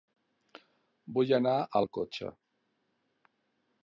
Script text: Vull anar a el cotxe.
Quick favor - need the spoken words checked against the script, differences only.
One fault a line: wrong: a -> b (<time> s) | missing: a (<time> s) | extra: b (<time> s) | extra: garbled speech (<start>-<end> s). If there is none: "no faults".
no faults